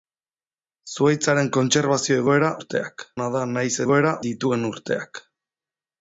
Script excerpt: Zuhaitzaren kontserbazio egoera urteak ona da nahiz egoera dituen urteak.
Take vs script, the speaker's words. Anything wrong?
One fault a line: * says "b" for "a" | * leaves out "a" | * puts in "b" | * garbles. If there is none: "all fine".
all fine